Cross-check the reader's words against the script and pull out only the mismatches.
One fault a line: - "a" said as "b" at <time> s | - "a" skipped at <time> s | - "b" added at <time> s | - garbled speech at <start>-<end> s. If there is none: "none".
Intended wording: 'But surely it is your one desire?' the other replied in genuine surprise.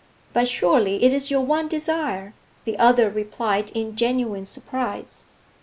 none